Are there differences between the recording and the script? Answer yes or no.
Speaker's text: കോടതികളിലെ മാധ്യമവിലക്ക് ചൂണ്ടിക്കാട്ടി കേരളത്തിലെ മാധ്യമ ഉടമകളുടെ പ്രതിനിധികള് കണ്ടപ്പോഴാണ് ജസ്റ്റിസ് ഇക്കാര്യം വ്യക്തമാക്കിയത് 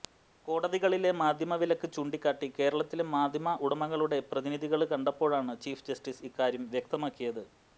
yes